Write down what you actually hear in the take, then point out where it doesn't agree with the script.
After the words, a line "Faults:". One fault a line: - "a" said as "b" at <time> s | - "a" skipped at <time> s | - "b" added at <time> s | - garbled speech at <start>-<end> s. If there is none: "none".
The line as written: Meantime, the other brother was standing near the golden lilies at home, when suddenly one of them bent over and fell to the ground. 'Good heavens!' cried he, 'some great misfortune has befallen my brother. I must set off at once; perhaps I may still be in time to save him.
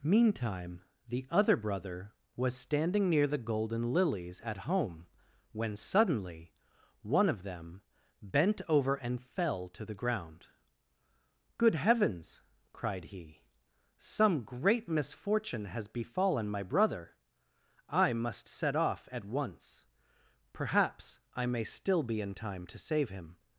Meantime, the other brother was standing near the golden lilies at home, when suddenly one of them bent over and fell to the ground. 'Good heavens!' cried he, 'some great misfortune has befallen my brother. I must set off at once; perhaps I may still be in time to save him.
Faults:
none